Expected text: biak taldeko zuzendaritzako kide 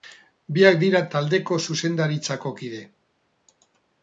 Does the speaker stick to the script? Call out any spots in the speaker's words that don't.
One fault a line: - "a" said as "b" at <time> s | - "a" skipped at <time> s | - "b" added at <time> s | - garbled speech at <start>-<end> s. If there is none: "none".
- "dira" added at 0.8 s